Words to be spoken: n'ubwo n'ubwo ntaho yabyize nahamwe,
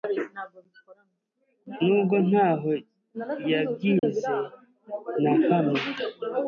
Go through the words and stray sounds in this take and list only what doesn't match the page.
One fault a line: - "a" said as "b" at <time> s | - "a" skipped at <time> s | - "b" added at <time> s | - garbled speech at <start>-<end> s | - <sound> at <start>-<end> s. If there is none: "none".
- "n'ubwo" skipped at 2.1 s
- dropout at 4.0-4.0 s